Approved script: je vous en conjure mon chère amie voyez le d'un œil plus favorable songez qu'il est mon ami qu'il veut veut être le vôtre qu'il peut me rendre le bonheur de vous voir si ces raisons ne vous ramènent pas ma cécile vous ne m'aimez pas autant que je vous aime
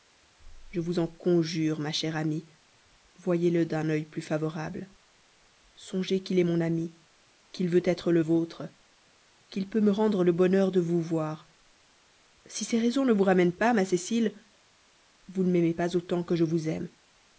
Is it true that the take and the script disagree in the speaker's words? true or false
true